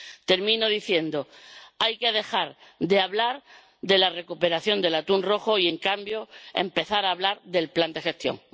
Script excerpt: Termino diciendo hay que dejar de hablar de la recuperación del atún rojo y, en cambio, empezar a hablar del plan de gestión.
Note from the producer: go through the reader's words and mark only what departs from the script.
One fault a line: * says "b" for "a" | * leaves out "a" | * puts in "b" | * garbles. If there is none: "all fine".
all fine